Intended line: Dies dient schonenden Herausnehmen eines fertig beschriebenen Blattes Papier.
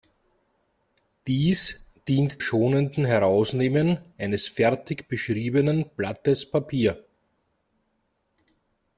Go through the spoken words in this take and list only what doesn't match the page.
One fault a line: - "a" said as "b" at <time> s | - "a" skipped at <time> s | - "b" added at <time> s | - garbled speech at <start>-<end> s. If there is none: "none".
none